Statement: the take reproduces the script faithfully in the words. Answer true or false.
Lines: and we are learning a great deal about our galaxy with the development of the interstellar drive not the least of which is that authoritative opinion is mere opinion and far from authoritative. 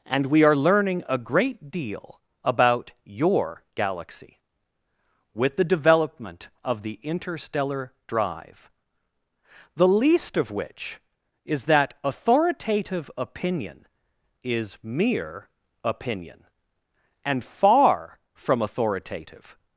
false